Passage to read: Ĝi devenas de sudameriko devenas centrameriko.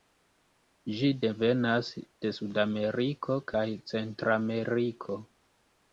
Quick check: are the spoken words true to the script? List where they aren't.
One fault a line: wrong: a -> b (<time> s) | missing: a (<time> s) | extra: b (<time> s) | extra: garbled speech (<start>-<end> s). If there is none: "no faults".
wrong: devenas -> kaj (3.5 s)